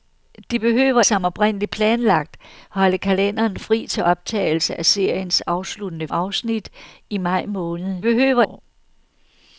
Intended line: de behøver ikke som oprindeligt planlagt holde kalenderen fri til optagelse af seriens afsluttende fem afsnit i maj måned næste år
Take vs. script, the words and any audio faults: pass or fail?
fail